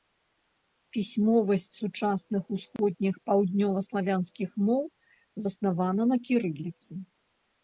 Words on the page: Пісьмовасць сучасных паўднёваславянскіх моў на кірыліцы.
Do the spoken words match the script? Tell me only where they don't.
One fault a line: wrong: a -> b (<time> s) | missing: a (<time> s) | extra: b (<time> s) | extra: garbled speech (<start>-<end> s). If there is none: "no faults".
extra: усходніх (2.6 s)
extra: заснавана (5.5 s)